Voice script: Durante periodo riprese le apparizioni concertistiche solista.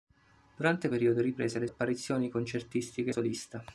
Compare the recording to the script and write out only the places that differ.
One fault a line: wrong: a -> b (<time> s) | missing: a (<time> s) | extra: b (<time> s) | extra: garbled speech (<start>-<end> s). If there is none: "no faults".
no faults